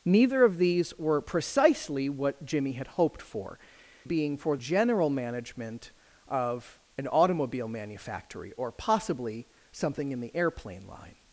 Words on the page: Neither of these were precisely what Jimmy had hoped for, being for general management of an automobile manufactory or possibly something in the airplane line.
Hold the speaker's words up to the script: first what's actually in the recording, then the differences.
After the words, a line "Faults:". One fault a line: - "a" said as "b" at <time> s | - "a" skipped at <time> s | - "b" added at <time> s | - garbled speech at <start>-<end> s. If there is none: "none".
Neither of these were precisely what Jimmy had hoped for, being for general management of an automobile manufactory or possibly something in the airplane line.
Faults:
none